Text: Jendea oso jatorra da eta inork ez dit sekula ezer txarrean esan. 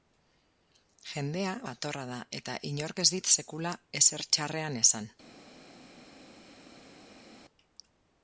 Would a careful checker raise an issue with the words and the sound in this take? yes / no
yes